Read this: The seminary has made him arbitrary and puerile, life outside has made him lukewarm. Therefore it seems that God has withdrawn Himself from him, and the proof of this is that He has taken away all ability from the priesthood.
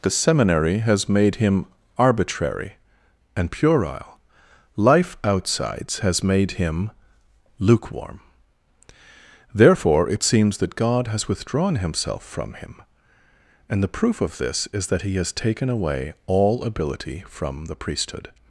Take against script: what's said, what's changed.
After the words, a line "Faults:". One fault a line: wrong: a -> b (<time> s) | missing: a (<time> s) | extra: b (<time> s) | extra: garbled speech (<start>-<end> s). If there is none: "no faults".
The seminary has made him arbitrary and puerile, life outsides has made him lukewarm. Therefore it seems that God has withdrawn Himself from him, and the proof of this is that He has taken away all ability from the priesthood.
Faults:
wrong: outside -> outsides (5.2 s)